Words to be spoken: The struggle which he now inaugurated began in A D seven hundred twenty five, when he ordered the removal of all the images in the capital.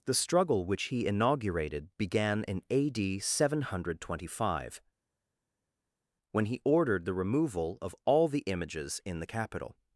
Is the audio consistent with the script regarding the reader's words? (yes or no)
no